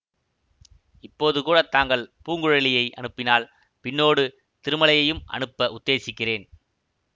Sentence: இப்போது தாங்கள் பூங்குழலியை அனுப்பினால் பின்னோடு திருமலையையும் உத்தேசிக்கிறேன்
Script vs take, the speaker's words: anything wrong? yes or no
yes